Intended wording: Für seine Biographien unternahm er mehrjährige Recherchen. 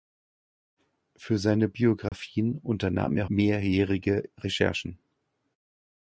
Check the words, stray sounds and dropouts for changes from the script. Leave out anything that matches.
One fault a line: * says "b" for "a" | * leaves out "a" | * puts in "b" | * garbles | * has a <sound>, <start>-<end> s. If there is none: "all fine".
* has a dropout, 2.1-2.1 s